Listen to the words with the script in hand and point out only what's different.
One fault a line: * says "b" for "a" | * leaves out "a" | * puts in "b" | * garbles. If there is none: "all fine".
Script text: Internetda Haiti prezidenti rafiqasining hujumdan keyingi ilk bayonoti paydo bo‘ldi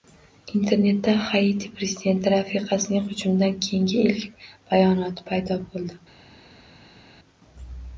all fine